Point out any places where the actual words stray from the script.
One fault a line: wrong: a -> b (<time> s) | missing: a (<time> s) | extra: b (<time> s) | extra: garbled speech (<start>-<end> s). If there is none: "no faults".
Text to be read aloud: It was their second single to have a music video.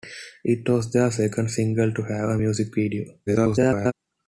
extra: garbled speech (3.3-3.9 s)